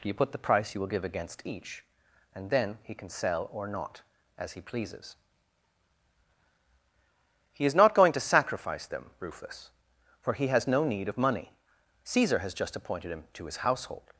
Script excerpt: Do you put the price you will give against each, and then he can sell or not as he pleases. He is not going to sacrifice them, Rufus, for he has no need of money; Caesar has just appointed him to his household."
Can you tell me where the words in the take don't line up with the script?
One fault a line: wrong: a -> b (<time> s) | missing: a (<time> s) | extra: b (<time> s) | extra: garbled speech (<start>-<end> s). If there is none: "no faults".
missing: Do (0.1 s)